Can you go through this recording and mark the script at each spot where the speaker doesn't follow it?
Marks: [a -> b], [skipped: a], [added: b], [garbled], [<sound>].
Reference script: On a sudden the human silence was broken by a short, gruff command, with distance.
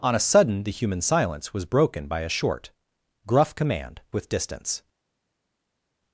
On a sudden the human silence was broken by a short, gruff command, with distance.